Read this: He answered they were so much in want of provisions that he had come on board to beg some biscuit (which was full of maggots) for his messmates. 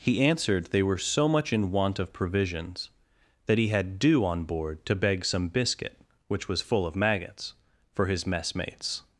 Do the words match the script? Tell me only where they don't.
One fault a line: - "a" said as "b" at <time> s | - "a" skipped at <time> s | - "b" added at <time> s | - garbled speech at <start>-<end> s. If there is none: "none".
- "come" said as "dew" at 4.0 s